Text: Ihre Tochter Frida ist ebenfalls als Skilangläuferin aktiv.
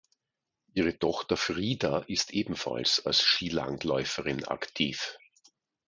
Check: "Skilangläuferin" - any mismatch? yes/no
no